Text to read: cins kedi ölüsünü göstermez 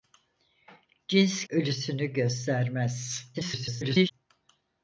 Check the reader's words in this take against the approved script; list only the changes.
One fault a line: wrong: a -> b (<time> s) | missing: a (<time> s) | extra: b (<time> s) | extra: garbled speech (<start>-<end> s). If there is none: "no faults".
missing: kedi (1.4 s)
extra: garbled speech (3.3-4.1 s)